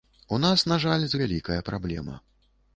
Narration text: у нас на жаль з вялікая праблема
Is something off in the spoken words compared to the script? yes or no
no